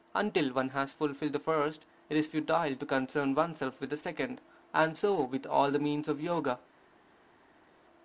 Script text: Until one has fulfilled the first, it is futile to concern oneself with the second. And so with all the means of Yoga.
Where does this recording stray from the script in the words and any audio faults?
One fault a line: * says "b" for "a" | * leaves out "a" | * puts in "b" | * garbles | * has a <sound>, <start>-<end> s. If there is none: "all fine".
all fine